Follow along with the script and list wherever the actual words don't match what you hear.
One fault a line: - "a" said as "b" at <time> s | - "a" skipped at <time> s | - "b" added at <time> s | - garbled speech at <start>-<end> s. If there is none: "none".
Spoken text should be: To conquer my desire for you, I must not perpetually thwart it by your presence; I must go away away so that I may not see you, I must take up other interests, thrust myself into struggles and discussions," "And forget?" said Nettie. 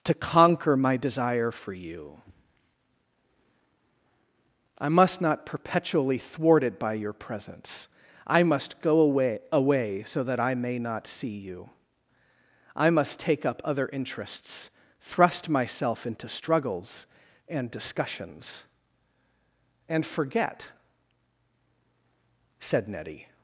none